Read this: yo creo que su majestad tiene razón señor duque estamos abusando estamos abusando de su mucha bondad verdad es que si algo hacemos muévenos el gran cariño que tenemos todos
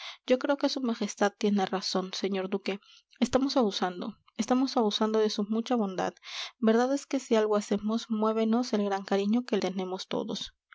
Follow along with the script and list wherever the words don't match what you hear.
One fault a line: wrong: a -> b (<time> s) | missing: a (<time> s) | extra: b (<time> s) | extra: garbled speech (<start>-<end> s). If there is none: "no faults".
no faults